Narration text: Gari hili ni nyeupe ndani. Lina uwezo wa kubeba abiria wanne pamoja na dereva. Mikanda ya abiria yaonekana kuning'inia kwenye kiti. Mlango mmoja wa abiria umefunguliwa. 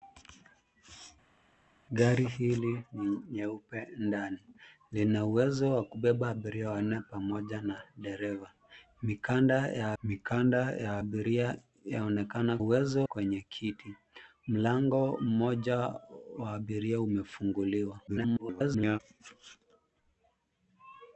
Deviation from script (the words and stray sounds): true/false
true